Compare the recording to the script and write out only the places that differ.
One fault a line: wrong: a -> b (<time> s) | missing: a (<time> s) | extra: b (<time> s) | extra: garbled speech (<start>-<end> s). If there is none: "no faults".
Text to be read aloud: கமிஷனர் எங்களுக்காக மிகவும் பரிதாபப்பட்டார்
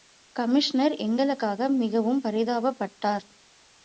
no faults